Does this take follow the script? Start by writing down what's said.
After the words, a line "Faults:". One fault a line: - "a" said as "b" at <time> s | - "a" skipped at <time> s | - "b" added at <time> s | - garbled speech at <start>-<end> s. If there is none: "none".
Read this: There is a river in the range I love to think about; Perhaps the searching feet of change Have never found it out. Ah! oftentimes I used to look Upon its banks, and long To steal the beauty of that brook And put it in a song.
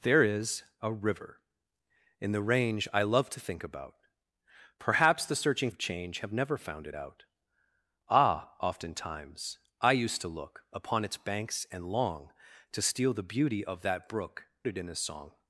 There is a river in the range I love to think about; Perhaps the searching of change Have never found it out. Ah! oftentimes I used to look Upon its banks, and long To steal the beauty of that brook It in a song.
Faults:
- "feet" skipped at 5.7 s
- "And put" skipped at 14.5 s